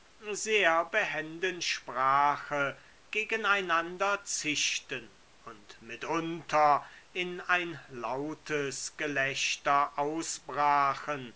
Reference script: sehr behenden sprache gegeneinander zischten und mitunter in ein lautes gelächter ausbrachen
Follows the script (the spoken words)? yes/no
yes